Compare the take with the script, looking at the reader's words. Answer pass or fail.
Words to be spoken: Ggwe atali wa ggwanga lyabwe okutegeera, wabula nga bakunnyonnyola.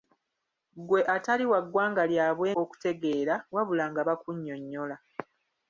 pass